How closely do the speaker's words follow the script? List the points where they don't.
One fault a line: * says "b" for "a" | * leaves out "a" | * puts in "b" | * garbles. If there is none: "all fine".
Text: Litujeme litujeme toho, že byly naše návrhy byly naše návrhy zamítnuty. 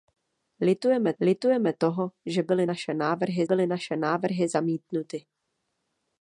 all fine